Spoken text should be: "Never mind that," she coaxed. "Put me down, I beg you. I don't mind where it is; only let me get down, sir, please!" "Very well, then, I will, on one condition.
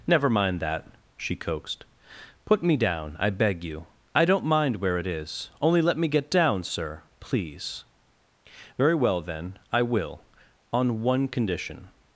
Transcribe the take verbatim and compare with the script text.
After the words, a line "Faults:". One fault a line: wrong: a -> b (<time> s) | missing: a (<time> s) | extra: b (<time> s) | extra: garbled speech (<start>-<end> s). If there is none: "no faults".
"Never mind that," she coaxed. "Put me down, I beg you. I don't mind where it is; only let me get down, sir, please!" "Very well, then, I will, on one condition.
Faults:
no faults